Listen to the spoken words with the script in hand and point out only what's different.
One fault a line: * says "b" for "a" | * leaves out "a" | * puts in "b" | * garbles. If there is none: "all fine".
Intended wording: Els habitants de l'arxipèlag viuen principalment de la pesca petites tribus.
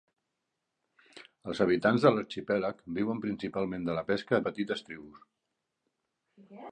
all fine